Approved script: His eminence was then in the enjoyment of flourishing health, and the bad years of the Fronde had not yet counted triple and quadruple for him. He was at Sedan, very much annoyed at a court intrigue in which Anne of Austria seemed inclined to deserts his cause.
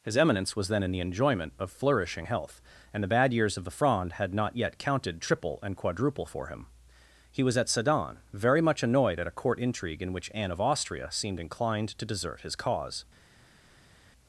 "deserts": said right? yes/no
no